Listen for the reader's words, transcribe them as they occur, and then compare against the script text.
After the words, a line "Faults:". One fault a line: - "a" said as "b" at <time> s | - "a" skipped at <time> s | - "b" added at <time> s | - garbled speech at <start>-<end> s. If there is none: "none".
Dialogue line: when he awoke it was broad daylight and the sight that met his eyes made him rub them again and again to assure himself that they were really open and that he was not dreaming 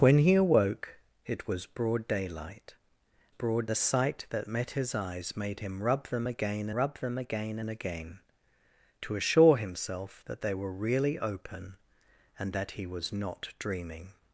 when he awoke it was broad daylight broad the sight that met his eyes made him rub them again rub them again and again to assure himself that they were really open and that he was not dreaming
Faults:
- "and" said as "broad" at 3.3 s
- "rub them again" added at 6.7 s